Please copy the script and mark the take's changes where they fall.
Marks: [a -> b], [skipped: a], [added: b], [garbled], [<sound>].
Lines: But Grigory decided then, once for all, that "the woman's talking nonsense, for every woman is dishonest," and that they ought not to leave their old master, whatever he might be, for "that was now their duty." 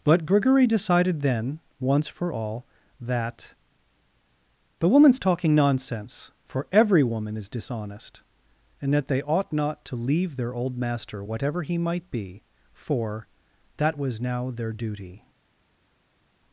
But Grigory decided then, once for all, that "the woman's talking nonsense, for every woman is dishonest," and that they ought not to leave their old master, whatever he might be, for "that was now their duty."